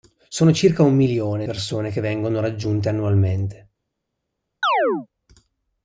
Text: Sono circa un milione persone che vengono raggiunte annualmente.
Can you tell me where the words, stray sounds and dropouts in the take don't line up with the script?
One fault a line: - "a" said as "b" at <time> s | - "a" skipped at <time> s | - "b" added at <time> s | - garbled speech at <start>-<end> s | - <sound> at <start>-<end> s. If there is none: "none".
- chirp at 4.6-5.1 s